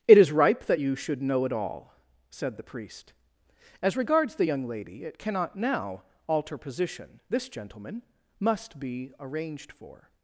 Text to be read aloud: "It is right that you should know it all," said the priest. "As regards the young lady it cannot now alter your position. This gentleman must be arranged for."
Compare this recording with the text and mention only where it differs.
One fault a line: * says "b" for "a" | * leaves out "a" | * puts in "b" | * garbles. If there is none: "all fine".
* says "ripe" for "right"
* leaves out "your"